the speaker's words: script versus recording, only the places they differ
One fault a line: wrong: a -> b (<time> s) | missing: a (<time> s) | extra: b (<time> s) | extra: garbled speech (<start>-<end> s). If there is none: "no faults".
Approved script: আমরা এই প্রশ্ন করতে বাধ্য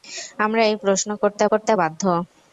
extra: করতে (1.5 s)